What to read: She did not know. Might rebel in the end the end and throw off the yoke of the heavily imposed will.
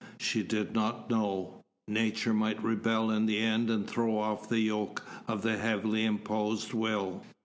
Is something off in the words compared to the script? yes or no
yes